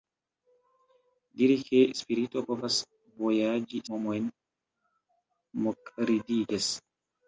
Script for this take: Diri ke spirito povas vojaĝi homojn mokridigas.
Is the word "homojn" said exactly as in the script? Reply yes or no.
yes